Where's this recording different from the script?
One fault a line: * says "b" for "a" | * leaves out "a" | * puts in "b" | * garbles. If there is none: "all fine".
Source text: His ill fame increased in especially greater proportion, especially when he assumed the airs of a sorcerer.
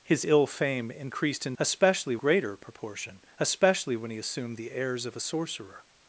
all fine